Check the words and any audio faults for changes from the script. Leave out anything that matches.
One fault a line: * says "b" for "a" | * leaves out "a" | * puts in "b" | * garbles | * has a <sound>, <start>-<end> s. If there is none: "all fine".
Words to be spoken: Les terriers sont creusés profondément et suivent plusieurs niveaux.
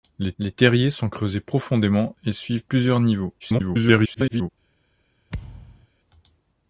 * puts in "les"
* garbles
* has a thud, 5.3-5.9 s